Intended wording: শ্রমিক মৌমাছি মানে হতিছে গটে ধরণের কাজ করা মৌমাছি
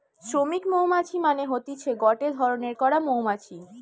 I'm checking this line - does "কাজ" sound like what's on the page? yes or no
no